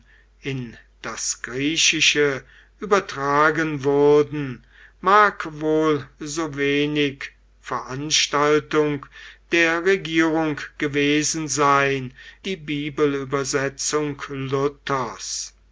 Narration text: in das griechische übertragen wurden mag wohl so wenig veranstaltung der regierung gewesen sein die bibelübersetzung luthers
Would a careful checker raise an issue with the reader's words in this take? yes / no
no